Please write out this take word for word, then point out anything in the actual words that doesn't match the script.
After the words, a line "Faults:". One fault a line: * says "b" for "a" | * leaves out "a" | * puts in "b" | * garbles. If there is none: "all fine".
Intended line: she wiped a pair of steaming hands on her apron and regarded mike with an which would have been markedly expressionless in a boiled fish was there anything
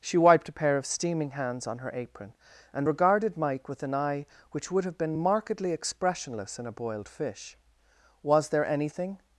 she wiped a pair of steaming hands on her apron and regarded mike with an eye which would have been markedly expressionless in a boiled fish was there anything
Faults:
* puts in "eye"